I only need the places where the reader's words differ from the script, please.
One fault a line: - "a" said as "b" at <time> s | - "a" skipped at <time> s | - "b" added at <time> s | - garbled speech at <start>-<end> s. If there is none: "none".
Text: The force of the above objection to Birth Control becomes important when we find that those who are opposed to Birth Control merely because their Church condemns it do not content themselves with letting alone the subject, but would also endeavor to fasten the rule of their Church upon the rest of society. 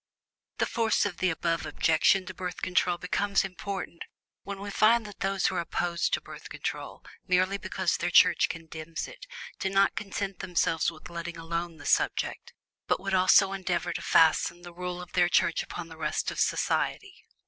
none